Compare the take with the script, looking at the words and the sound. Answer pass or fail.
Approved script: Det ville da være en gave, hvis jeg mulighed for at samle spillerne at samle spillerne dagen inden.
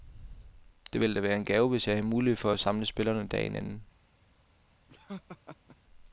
fail